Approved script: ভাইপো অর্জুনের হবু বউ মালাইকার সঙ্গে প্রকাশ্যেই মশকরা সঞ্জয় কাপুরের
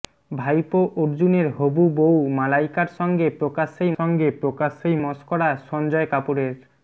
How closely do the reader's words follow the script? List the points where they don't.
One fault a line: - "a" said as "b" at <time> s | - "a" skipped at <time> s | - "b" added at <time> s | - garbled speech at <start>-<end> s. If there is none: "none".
- "সঙ্গে প্রকাশ্যেই" added at 4.0 s